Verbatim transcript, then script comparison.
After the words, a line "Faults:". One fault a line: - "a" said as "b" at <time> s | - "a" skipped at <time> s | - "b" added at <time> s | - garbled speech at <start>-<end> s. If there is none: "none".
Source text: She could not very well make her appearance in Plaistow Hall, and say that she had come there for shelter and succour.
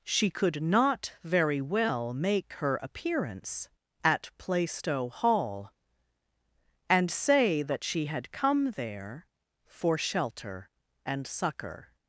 She could not very well make her appearance at Plaistow Hall, and say that she had come there for shelter and succour.
Faults:
- "in" said as "at" at 4.0 s